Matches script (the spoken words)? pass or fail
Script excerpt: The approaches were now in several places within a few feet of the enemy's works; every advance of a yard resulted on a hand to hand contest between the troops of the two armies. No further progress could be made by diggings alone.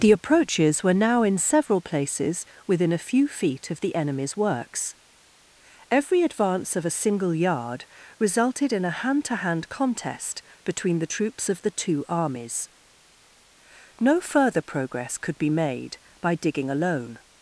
fail